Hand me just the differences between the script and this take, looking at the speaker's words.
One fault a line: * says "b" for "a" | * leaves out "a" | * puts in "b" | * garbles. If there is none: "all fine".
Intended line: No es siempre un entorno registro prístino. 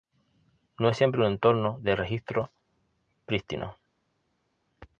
* puts in "de"